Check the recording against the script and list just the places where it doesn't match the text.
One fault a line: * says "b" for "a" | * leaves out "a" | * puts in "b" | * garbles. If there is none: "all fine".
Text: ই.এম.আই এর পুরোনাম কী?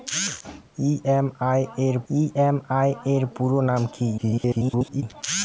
* puts in "ই.এম.আই এর"
* garbles